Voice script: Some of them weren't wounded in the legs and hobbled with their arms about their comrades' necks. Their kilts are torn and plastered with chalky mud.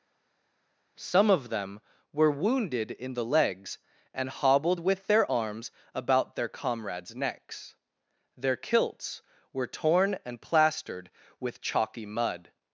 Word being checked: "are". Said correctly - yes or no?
no